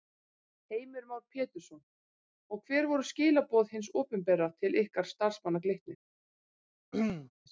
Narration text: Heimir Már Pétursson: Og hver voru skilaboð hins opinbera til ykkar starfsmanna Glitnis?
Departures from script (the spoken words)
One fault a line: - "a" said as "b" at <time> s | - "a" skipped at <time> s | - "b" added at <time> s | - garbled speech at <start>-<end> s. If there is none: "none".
none